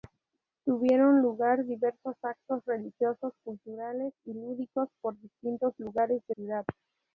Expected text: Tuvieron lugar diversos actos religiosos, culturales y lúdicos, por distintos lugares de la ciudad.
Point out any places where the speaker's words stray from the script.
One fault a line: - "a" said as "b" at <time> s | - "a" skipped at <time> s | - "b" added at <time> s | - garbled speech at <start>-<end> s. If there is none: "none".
- "la" skipped at 6.3 s